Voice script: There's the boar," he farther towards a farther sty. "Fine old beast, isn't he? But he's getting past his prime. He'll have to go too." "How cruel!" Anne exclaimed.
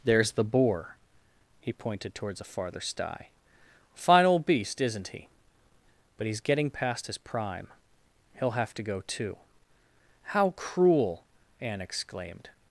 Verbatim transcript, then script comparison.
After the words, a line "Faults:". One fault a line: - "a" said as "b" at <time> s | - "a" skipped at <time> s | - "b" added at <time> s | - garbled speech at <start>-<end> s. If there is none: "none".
There's the boar," he pointed towards a farther sty. "Fine old beast, isn't he? But he's getting past his prime. He'll have to go too." "How cruel!" Anne exclaimed.
Faults:
- "farther" said as "pointed" at 1.7 s